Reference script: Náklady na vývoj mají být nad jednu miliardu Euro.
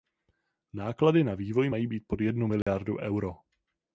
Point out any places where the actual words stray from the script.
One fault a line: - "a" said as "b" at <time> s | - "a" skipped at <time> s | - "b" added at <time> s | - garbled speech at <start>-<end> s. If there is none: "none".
- "nad" said as "pod" at 2.1 s